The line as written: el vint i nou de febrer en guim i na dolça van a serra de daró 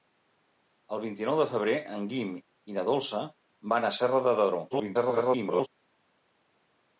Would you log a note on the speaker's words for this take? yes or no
yes